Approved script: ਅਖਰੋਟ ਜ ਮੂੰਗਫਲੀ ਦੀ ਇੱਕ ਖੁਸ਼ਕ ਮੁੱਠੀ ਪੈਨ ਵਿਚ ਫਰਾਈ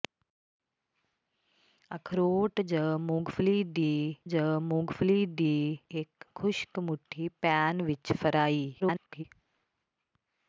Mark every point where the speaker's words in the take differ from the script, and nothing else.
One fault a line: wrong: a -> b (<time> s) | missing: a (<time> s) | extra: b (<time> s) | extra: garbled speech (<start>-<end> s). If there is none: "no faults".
extra: ਜ ਮੂੰਗਫਲੀ ਦੀ (4.2 s)
extra: garbled speech (8.8-9.2 s)